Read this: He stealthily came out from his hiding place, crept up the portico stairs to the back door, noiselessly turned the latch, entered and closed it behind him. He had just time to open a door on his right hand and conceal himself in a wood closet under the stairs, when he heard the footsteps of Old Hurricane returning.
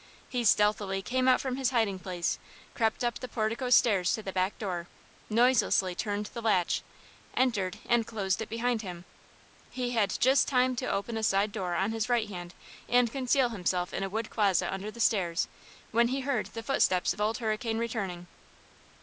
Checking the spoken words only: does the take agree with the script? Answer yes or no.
no